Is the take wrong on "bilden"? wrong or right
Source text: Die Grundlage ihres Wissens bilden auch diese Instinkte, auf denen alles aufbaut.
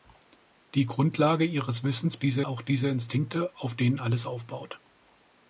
wrong